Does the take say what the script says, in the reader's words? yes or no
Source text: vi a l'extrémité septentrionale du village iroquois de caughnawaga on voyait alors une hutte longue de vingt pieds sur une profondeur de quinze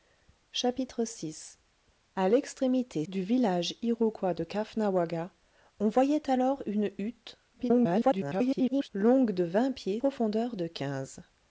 no